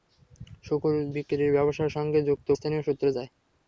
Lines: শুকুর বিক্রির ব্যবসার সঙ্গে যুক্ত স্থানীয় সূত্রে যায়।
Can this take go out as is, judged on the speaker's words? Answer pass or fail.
pass